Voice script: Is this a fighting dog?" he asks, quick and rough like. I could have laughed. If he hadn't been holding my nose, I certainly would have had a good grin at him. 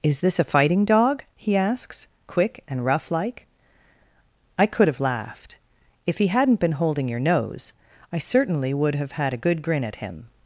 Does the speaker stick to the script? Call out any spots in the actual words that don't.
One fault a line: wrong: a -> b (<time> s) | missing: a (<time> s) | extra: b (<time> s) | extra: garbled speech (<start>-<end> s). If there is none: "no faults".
wrong: my -> your (7.1 s)